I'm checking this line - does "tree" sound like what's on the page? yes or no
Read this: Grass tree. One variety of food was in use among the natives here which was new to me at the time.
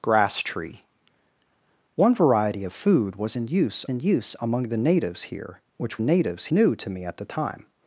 yes